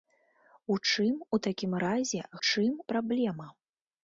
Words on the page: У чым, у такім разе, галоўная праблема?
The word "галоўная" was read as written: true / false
false